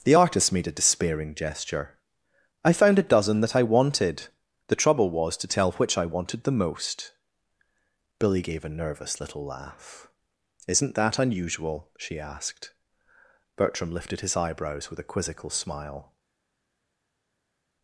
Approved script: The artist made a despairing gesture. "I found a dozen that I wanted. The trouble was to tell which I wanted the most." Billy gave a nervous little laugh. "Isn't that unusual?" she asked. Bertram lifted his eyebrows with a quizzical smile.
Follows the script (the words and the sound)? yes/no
yes